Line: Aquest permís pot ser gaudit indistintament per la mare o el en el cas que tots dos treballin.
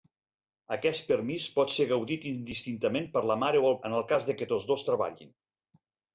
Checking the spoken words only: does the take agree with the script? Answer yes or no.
yes